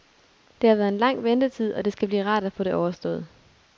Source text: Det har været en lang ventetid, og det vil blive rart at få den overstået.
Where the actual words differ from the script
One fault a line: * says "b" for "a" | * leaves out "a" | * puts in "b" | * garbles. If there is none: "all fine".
* says "skal" for "vil"
* says "det" for "den"